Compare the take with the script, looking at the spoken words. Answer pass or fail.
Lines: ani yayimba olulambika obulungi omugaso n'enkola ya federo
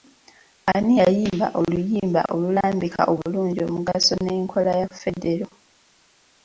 fail